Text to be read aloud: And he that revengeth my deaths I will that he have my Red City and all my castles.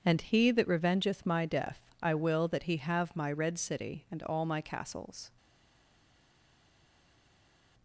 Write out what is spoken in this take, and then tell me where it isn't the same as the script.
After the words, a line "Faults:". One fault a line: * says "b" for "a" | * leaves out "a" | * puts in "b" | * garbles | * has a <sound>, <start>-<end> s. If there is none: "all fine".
And he that revengeth my death I will that he have my Red City and all my castles.
Faults:
* says "death" for "deaths"